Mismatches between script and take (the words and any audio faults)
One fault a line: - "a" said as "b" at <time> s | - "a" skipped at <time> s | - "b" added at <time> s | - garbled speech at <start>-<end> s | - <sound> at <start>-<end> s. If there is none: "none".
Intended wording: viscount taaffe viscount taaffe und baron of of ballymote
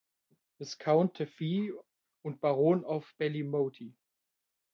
- "viscount taaffe" skipped at 1.7 s
- "of" skipped at 3.1 s